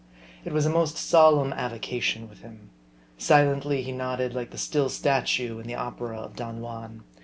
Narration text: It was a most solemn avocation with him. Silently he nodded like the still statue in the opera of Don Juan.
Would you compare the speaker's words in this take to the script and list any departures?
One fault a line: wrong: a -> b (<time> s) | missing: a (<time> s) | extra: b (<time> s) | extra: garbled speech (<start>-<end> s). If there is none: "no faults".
no faults